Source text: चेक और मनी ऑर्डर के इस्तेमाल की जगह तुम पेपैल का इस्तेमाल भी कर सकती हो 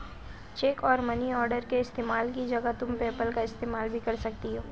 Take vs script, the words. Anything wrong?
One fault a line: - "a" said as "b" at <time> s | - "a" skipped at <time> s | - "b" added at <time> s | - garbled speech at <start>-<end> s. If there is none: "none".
none